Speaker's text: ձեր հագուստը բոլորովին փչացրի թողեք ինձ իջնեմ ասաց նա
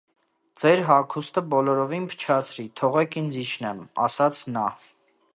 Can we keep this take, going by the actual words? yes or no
yes